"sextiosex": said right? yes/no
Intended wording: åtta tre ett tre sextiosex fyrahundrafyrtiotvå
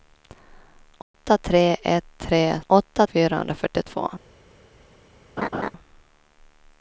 no